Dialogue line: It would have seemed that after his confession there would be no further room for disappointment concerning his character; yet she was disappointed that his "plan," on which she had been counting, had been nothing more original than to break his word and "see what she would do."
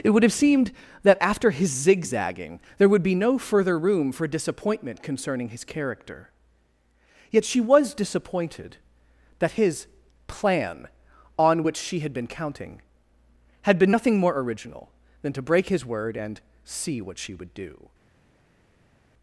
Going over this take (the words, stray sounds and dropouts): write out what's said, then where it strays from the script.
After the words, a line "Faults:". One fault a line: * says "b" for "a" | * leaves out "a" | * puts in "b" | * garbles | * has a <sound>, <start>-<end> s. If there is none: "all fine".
It would have seemed that after his zigzagging there would be no further room for disappointment concerning his character; yet she was disappointed that his "plan," on which she had been counting, had been nothing more original than to break his word and "see what she would do."
Faults:
* says "zigzagging" for "confession"